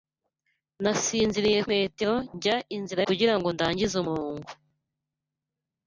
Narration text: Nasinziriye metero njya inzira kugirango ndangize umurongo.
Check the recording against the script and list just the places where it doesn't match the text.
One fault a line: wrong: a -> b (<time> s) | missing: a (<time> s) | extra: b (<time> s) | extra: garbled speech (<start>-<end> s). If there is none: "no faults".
no faults